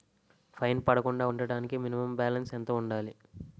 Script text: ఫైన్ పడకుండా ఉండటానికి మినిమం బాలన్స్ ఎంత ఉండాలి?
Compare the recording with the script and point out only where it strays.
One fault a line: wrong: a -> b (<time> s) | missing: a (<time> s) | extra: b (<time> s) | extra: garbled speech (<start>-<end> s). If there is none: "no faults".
no faults